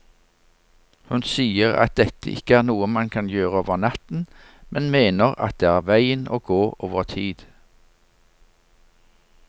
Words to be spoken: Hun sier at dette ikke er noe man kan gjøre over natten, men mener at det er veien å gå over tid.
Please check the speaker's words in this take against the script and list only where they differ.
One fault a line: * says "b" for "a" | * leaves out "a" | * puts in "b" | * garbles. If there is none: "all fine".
all fine